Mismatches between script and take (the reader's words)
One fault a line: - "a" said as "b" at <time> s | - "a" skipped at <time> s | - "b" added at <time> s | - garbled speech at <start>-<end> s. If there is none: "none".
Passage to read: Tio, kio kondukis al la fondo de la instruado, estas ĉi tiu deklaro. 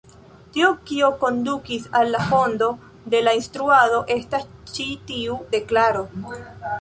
none